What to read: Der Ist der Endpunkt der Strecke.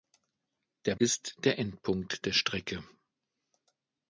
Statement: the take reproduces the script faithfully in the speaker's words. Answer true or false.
true